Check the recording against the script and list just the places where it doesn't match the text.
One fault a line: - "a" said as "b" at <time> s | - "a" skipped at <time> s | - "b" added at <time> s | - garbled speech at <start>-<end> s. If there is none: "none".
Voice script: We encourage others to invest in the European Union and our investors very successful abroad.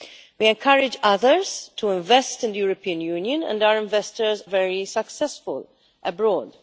none